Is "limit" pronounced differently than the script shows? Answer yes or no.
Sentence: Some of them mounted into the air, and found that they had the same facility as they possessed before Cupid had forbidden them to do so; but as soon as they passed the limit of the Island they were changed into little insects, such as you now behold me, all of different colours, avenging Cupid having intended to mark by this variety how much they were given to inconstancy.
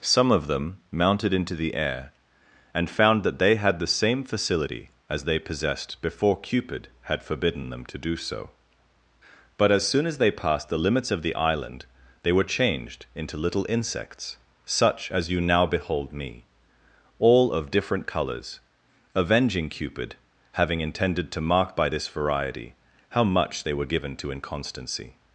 yes